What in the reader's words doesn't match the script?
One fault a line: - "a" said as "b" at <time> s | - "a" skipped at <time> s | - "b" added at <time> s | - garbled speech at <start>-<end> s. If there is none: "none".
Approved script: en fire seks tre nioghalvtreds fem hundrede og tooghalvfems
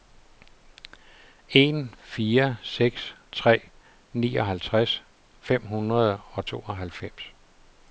none